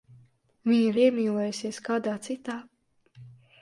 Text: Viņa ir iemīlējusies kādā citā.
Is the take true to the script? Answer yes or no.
yes